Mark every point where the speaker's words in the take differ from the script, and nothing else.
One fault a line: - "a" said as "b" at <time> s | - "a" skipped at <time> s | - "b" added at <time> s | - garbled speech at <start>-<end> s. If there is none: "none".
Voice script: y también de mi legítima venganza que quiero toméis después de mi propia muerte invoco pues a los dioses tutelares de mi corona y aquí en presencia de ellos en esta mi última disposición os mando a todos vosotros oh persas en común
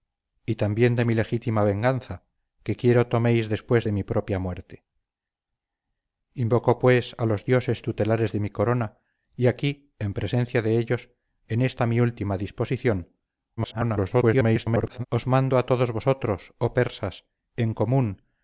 - garbled speech at 13.6-15.1 s